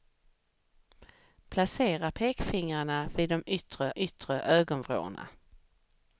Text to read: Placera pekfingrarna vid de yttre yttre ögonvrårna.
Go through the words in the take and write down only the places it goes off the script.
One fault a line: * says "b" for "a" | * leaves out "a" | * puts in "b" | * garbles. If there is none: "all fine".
all fine